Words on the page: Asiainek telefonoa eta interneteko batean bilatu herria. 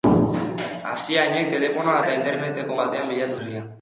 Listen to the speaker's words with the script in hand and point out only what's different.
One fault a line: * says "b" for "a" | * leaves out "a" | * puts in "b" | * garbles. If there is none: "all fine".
all fine